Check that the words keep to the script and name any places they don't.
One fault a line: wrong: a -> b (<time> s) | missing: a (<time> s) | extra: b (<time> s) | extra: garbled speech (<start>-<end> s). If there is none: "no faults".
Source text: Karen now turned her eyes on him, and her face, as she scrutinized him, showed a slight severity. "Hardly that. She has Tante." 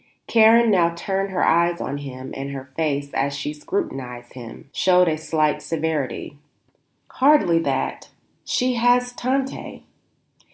no faults